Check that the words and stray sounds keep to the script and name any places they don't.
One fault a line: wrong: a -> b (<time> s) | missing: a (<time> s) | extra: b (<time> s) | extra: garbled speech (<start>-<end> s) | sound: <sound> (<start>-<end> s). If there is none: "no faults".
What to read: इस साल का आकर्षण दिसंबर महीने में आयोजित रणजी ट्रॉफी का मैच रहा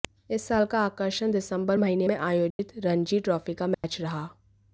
sound: dropout (2.5-2.6 s)
sound: dropout (3.7-3.8 s)